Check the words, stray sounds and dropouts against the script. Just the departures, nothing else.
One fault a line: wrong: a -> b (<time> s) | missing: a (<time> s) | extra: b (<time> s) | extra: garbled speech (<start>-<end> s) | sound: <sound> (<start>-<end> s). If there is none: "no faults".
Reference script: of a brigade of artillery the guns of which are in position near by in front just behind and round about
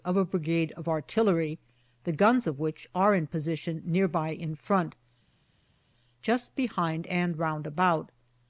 no faults